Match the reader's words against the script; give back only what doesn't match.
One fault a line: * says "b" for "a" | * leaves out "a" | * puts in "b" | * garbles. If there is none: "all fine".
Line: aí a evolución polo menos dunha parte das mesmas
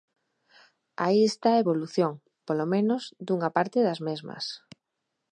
* puts in "está"